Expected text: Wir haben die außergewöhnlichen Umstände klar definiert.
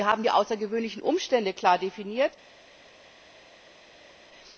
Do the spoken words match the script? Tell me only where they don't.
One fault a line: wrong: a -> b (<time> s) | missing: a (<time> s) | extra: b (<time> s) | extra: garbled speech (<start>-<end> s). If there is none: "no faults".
no faults